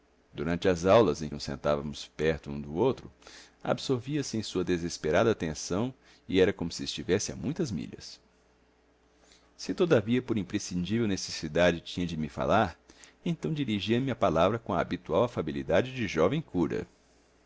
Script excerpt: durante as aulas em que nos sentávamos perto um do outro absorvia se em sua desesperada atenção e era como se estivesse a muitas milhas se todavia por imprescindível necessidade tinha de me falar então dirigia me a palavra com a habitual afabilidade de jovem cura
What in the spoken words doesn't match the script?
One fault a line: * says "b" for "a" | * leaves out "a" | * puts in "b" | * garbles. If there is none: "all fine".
* leaves out "que"